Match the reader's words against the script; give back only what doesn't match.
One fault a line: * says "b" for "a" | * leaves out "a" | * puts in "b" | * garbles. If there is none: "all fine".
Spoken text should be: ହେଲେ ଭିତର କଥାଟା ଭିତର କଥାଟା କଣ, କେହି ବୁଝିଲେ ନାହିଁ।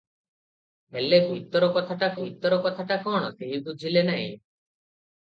all fine